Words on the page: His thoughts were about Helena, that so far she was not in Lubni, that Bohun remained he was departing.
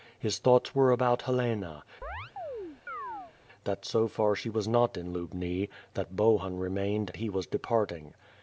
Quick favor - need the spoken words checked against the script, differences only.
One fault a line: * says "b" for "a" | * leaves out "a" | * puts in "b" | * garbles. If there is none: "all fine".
all fine